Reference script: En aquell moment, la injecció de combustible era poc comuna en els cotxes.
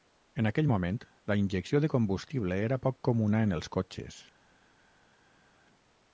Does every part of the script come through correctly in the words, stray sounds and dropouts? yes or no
yes